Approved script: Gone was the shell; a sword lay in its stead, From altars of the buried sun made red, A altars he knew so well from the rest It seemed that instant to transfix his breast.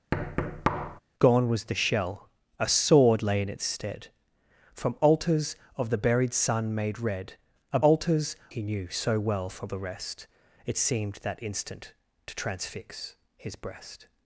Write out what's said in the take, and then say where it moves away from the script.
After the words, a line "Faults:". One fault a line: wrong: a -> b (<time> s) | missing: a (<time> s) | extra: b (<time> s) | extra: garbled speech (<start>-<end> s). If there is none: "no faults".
Gone was the shell; a sword lay in its stead, From altars of the buried sun made red, A altars he knew so well from the rest It seemed that instant to transfix his breast.
Faults:
no faults